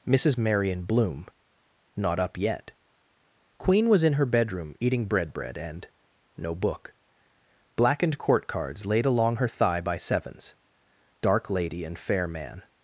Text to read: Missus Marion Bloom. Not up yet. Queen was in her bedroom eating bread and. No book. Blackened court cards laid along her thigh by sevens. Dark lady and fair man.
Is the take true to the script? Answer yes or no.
no